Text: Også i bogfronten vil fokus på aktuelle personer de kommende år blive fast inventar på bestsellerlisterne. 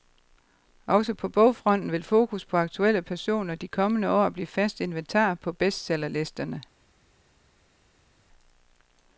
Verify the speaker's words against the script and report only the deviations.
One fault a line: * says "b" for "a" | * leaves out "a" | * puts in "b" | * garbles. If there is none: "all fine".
* says "på" for "i"